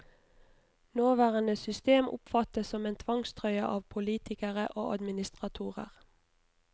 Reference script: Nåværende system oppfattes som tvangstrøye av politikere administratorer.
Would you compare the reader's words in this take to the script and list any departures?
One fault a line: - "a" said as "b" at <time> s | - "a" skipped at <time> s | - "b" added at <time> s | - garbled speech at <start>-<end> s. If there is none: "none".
- "en" added at 2.9 s
- "og" added at 4.7 s